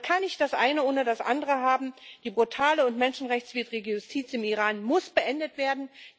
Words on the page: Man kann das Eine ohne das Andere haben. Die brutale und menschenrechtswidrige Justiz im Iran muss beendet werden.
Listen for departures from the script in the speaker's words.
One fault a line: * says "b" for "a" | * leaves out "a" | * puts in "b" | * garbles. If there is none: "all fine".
* puts in "nicht"